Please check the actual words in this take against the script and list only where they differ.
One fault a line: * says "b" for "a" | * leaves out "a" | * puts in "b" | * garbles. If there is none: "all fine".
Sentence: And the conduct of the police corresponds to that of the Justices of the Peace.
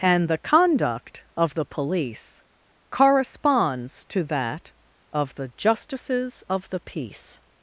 all fine